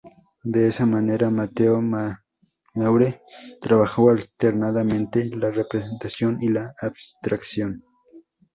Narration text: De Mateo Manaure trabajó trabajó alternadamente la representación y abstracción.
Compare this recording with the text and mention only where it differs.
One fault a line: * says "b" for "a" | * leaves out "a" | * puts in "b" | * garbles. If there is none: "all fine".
* puts in "esa manera"
* leaves out "trabajó"
* puts in "la"